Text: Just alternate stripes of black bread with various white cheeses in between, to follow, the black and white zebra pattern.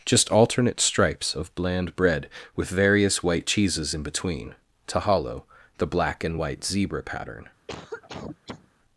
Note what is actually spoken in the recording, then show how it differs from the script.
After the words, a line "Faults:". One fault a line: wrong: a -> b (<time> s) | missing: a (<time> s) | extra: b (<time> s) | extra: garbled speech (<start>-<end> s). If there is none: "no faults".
Just alternate stripes of bland bread with various white cheeses in between, to hollow, the black and white zebra pattern.
Faults:
wrong: black -> bland (1.6 s)
wrong: follow -> hollow (5.0 s)